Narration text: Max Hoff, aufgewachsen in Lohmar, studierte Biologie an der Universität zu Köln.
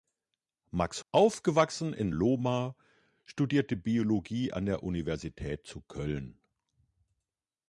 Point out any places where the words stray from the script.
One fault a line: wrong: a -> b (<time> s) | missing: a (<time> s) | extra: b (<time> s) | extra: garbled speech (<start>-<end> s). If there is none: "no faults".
missing: Hoff (1.1 s)